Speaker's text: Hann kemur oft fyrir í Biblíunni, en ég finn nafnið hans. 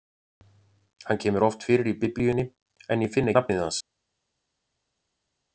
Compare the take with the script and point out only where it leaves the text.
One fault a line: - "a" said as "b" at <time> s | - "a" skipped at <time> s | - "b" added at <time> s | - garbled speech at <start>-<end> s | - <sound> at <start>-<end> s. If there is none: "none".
none